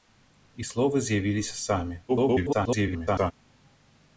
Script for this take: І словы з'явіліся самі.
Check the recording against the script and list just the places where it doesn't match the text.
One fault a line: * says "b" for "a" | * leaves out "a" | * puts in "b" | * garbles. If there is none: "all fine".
* garbles